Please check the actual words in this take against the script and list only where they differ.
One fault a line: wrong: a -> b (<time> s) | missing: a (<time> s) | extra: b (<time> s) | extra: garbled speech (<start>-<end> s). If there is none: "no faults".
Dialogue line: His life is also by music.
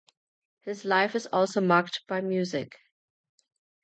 extra: marked (1.6 s)